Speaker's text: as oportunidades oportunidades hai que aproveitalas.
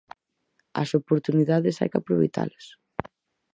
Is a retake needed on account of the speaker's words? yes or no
yes